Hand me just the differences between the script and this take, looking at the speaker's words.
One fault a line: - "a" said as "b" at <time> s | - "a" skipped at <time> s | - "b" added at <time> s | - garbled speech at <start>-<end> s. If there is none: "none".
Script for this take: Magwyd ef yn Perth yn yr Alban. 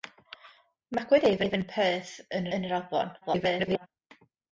- "ef" added at 1.4 s
- "yn" added at 2.6 s
- garbled speech at 3.2-3.9 s